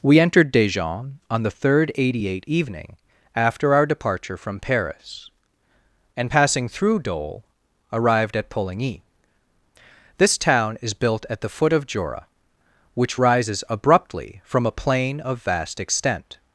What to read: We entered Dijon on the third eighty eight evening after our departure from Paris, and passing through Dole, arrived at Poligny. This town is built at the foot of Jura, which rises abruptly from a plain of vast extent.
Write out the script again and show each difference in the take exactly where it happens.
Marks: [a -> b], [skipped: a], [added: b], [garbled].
We entered Dijon on the third eighty eight evening after our departure from Paris, and passing through Dole, arrived at Poligny. This town is built at the foot of Jura, which rises abruptly from a plain of vast extent.